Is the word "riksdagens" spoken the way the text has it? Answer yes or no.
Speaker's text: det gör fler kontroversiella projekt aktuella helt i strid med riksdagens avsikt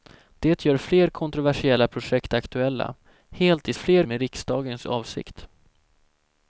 yes